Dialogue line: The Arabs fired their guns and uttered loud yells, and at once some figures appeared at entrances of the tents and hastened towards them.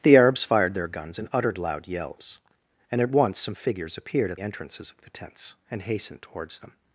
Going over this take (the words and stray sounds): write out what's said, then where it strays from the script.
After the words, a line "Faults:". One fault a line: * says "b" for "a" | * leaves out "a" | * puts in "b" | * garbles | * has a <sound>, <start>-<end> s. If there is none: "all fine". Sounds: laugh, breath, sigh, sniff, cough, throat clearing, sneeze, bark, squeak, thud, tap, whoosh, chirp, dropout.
The Arabs fired their guns and uttered loud yells, and at once some figures appeared at entrances of the tents and hastened towards them.
Faults:
all fine